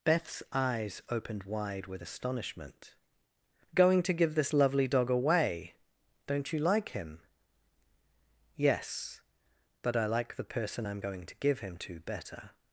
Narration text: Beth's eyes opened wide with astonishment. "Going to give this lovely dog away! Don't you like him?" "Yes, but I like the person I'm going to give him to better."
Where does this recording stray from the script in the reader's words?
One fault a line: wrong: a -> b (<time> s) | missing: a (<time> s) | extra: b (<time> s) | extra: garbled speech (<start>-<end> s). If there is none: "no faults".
no faults